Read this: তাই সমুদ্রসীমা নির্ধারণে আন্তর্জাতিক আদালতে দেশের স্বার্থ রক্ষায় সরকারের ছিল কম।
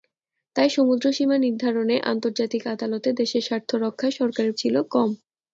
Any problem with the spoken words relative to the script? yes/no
no